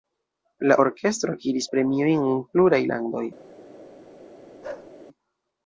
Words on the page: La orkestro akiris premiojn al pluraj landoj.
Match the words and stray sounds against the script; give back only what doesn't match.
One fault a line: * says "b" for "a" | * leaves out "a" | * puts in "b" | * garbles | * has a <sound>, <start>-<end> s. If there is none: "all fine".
* says "en" for "al"
* has a bark, 4.6-4.9 s